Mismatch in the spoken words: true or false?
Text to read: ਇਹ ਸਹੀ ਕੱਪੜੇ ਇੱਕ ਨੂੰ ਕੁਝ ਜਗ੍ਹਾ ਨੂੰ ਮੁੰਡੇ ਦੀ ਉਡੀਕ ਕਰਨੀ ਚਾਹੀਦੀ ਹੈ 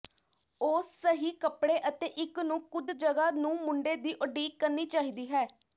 true